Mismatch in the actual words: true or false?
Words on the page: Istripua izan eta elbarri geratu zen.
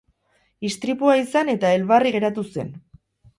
false